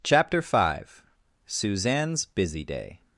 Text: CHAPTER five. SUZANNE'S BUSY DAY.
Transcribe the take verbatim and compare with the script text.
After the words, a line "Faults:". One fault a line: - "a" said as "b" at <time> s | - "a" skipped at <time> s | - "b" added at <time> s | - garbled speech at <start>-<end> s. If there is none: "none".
CHAPTER five. SUZANNE'S BUSY DAY.
Faults:
none